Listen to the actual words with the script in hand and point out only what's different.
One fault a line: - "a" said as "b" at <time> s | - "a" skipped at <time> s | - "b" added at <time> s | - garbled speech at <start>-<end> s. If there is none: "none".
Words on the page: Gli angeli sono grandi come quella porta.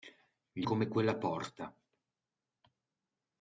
- "angeli sono grandi" skipped at 0.7 s